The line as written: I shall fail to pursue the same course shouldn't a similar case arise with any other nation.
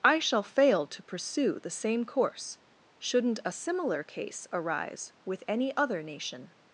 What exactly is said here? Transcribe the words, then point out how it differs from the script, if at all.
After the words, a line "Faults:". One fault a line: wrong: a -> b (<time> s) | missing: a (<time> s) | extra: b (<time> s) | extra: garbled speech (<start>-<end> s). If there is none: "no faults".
I shall fail to pursue the same course shouldn't a similar case arise with any other nation.
Faults:
no faults